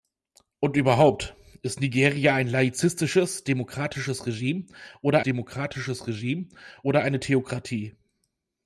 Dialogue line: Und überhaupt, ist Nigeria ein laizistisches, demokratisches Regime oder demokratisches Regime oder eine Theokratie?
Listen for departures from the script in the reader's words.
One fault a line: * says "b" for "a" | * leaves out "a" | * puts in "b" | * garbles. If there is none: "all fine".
all fine